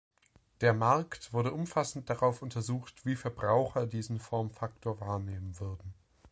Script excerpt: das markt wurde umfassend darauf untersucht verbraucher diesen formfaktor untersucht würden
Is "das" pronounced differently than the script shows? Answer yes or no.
yes